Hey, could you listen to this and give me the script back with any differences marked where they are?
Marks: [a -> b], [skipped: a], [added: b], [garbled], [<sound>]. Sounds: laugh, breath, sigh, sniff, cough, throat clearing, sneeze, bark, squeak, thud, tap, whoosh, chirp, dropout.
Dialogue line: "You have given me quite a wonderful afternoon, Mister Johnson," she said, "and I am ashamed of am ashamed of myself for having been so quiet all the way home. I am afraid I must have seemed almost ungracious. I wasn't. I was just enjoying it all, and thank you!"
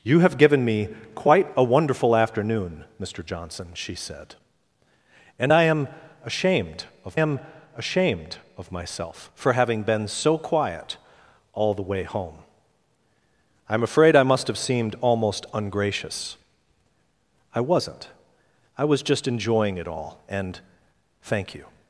"You have given me quite a wonderful afternoon, Mister Johnson," she said, "and I am ashamed of am ashamed of myself for having been so quiet all the way home. I am afraid I must have seemed almost ungracious. I wasn't. I was just enjoying it all, and thank you!"